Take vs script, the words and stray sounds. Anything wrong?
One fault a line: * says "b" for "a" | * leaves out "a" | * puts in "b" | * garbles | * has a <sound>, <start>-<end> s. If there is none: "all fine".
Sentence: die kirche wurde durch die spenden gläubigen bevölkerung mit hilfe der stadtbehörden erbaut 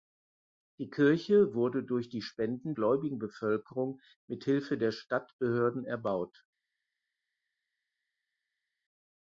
all fine